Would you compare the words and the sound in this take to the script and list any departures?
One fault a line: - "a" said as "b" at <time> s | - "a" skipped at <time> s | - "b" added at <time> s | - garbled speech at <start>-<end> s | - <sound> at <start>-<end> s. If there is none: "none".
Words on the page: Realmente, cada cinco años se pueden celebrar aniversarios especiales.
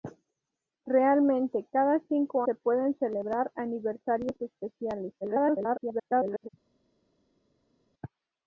- "años" skipped at 2.4 s
- garbled speech at 5.2-6.5 s